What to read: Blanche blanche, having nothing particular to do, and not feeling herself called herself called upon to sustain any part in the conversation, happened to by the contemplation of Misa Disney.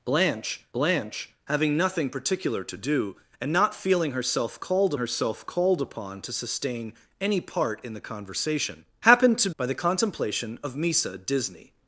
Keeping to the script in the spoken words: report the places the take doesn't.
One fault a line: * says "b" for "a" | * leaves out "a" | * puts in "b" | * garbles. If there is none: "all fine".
all fine